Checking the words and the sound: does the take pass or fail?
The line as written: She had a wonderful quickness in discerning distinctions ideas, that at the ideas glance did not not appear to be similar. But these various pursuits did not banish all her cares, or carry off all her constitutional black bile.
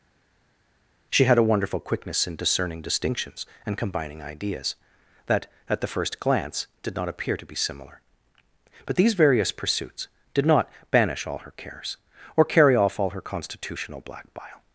fail